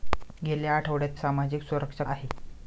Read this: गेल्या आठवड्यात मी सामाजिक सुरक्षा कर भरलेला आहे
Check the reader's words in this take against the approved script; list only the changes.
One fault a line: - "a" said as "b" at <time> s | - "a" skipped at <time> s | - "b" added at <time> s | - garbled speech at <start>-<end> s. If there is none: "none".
- "मी" skipped at 1.2 s
- "कर भरलेला" skipped at 2.0 s